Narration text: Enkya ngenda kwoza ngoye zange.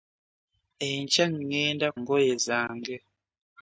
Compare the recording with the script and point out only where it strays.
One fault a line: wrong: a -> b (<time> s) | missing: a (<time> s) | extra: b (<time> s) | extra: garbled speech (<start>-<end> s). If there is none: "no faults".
missing: kwoza (1.9 s)